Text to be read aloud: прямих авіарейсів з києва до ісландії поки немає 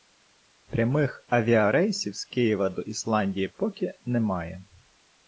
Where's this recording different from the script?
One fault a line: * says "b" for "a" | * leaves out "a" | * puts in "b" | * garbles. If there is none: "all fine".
all fine